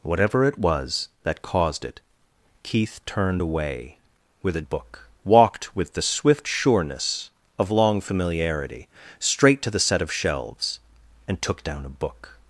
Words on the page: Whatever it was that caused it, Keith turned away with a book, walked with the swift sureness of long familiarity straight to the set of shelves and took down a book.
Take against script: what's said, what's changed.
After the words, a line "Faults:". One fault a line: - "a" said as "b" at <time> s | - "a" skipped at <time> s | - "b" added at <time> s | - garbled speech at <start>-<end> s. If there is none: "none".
Whatever it was that caused it, Keith turned away with a book, walked with the swift sureness of long familiarity straight to the set of shelves and took down a book.
Faults:
none